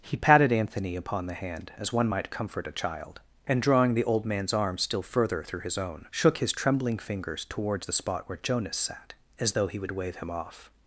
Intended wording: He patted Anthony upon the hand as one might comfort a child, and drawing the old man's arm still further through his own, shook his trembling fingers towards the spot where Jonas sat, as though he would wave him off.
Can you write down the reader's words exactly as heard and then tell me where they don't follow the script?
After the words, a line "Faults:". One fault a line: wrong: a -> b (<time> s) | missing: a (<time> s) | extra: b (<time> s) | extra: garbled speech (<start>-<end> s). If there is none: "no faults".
He patted Anthony upon the hand as one might comfort a child, and drawing the old man's arm still further through his own, shook his trembling fingers towards the spot where Jonas sat, as though he would wave him off.
Faults:
no faults